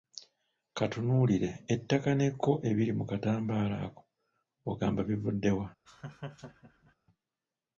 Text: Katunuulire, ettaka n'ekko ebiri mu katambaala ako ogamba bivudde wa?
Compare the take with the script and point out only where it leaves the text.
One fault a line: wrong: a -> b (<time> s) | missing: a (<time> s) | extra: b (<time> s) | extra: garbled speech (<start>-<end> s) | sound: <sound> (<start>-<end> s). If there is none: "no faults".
sound: laugh (5.9-7.0 s)